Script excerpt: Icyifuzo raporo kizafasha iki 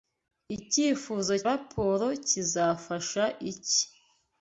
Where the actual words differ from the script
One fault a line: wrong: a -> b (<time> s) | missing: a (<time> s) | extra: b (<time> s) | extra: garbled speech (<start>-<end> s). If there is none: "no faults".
no faults